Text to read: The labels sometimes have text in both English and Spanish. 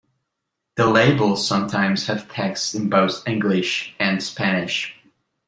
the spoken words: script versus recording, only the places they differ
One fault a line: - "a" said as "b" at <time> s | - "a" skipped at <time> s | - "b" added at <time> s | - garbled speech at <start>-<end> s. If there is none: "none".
none